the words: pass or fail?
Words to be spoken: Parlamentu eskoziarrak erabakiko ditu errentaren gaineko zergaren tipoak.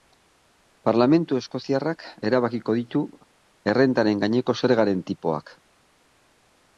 pass